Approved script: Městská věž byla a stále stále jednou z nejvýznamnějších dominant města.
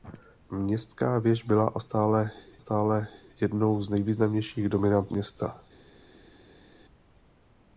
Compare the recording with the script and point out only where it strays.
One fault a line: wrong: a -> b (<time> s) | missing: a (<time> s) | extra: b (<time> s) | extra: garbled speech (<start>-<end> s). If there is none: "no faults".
no faults